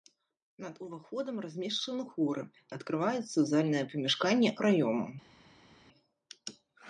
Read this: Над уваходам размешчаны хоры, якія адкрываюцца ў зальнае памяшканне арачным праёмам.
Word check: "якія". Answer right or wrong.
wrong